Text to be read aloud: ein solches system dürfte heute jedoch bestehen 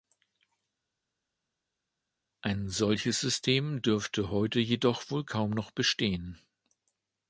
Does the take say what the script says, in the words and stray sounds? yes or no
no